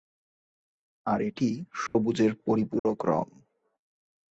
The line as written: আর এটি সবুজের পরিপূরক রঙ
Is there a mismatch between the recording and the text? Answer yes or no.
no